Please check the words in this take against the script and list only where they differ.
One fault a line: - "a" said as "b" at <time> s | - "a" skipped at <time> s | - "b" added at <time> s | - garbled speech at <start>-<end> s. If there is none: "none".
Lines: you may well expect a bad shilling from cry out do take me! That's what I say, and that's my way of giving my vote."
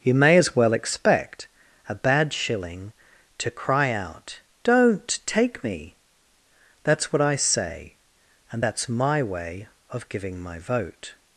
- "as" added at 0.4 s
- "from" said as "to" at 3.4 s
- "do" said as "don't" at 4.6 s